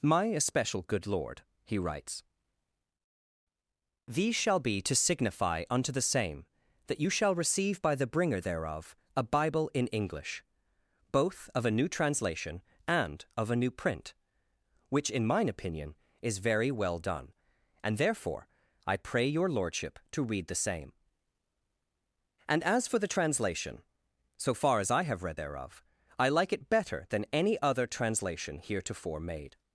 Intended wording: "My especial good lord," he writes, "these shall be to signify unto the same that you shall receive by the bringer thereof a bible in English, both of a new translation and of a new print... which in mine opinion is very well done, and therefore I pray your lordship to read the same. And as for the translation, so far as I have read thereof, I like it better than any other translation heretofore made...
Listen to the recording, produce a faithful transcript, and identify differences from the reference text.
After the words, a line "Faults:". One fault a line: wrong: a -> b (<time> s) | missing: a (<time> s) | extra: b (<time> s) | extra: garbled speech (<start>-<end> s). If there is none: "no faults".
"My especial good lord," he writes, "these shall be to signify unto the same that you shall receive by the bringer thereof a bible in English, both of a new translation and of a new print... which in mine opinion is very well done, and therefore I pray your lordship to read the same. And as for the translation, so far as I have read thereof, I like it better than any other translation heretofore made...
Faults:
no faults